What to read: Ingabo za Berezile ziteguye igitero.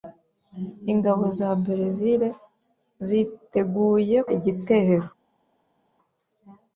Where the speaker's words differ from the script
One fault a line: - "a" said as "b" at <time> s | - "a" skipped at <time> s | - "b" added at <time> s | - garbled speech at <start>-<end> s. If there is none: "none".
none